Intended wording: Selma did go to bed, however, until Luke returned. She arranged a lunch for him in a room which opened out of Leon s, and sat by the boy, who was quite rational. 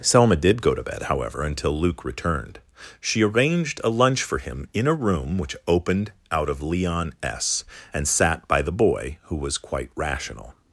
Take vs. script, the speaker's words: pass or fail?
pass